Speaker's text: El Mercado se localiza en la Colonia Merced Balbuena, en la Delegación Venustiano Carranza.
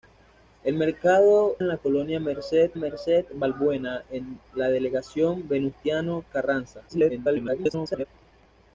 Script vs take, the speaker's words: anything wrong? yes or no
yes